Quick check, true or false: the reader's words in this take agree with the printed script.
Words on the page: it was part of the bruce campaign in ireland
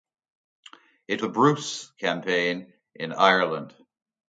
false